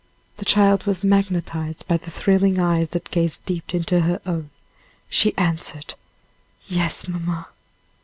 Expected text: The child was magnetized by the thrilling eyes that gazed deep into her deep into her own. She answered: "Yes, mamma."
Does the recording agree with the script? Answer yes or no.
no